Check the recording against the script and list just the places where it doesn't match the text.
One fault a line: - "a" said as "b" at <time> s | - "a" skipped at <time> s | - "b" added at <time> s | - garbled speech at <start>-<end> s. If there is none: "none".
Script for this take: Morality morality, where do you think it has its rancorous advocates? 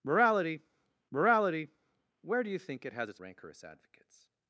none